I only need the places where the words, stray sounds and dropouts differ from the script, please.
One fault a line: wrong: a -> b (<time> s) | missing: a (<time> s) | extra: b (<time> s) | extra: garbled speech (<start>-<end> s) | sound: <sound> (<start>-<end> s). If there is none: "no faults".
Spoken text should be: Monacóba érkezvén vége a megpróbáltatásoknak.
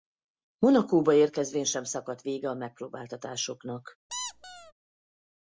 extra: sem szakadt (1.6 s)
sound: squeak (4.1-4.7 s)